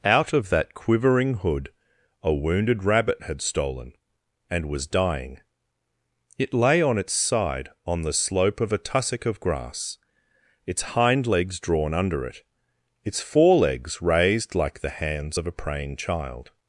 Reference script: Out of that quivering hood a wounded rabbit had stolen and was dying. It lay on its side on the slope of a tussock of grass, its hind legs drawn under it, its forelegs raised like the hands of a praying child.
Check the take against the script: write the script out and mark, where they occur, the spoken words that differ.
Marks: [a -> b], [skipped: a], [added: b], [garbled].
Out of that quivering hood a wounded rabbit had stolen and was dying. It lay on its side on the slope of a tussock of grass, its hind legs drawn under it, its forelegs raised like the hands of a praying child.